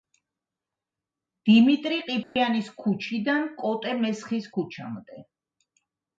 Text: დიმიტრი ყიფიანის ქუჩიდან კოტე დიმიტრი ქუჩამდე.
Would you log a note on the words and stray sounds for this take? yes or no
yes